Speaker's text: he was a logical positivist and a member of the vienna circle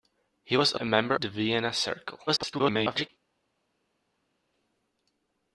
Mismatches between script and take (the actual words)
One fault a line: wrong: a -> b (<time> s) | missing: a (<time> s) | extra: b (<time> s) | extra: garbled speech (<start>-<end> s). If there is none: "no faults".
missing: logical positivist and (0.8 s)
missing: of (1.1 s)
extra: garbled speech (2.3-3.1 s)